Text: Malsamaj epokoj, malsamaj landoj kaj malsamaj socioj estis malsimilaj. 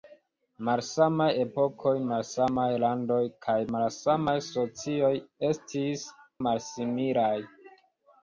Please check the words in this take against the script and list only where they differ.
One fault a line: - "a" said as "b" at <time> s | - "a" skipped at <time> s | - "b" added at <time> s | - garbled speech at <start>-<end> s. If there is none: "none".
none